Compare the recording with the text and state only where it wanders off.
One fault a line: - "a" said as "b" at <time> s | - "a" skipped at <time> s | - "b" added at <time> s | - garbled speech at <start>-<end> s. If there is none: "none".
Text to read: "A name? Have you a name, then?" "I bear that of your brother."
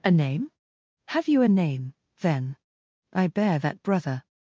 - "of your" skipped at 3.8 s